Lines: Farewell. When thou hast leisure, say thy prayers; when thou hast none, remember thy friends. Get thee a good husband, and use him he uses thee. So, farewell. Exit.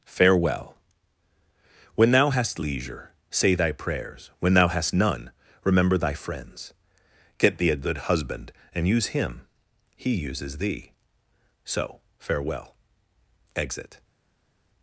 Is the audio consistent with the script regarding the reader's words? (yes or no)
yes